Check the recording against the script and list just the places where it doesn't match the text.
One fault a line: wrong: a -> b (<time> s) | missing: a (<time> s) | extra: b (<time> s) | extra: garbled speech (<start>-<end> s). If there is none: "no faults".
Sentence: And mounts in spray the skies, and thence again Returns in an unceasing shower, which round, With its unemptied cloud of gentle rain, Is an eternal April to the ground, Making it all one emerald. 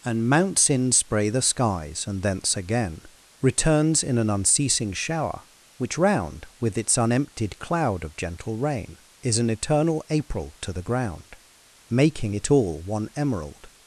no faults